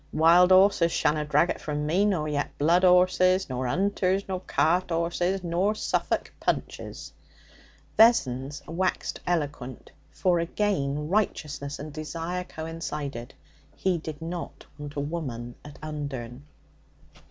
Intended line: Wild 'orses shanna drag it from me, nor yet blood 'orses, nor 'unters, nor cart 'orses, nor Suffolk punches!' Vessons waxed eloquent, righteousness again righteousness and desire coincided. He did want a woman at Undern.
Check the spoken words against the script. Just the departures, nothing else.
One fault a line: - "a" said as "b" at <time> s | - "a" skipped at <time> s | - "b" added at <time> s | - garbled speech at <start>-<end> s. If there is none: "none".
- "righteousness" said as "for" at 10.1 s
- "not" added at 14.2 s